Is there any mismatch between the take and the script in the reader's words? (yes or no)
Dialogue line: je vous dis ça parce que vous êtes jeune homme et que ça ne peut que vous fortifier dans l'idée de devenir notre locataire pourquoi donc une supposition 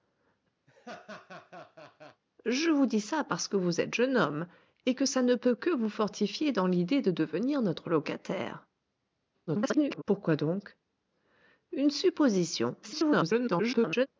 yes